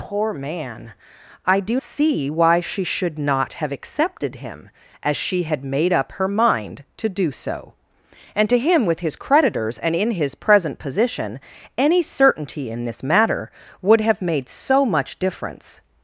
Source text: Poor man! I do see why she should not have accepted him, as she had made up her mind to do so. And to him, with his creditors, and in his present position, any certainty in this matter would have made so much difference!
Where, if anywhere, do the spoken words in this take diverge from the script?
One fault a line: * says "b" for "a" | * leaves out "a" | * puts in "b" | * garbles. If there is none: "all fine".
all fine